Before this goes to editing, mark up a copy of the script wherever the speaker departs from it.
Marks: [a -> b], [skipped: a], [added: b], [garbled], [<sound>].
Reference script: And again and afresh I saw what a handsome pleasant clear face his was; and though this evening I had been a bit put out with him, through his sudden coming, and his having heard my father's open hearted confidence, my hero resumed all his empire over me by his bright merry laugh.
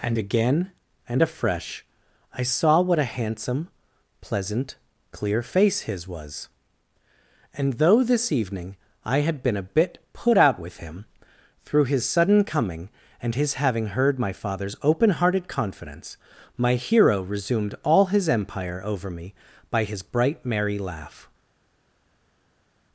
And again and afresh I saw what a handsome pleasant clear face his was; and though this evening I had been a bit put out with him, through his sudden coming, and his having heard my father's open hearted confidence, my hero resumed all his empire over me by his bright merry laugh.